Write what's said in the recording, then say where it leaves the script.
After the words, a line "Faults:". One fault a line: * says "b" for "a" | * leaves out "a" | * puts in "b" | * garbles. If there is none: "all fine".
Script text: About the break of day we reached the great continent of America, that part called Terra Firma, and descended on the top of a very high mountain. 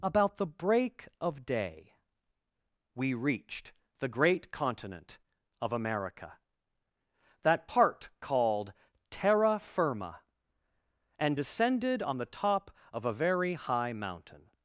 About the break of day we reached the great continent of America, that part called Terra Firma, and descended on the top of a very high mountain.
Faults:
all fine